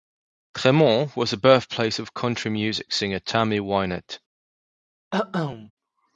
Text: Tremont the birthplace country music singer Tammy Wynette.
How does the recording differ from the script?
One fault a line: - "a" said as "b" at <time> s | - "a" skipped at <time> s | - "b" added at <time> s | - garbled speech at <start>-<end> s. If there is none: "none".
- "was" added at 1.1 s
- "of" added at 2.0 s